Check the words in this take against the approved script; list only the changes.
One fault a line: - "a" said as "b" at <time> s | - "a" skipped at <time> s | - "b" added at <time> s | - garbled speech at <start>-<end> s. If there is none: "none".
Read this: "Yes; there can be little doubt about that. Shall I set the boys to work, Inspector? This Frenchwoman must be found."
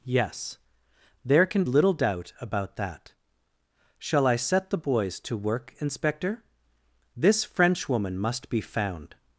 - "be" skipped at 1.6 s